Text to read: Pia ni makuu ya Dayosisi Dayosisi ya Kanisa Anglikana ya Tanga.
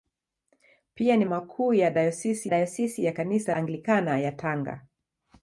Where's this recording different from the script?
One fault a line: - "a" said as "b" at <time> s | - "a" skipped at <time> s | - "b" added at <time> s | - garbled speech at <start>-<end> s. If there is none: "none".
none